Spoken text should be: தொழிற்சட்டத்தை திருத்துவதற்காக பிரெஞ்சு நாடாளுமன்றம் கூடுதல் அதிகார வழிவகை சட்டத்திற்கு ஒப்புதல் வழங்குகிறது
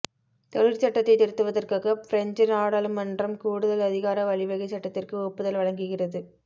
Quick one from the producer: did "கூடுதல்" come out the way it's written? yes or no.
yes